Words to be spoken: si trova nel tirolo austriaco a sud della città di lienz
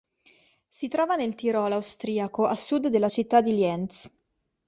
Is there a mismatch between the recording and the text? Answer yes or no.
no